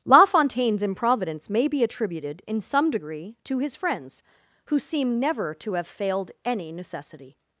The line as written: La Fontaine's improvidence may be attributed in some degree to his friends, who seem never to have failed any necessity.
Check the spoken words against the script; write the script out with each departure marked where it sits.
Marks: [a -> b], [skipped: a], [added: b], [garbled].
La Fontaine's improvidence may be attributed in some degree to his friends, who seem never to have failed any necessity.